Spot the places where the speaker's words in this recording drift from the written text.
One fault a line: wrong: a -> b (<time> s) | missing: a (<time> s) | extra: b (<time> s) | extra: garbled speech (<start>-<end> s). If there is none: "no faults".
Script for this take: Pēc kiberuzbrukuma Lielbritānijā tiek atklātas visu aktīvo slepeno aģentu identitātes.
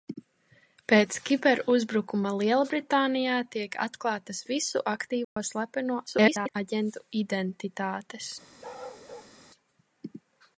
extra: garbled speech (6.1-6.5 s)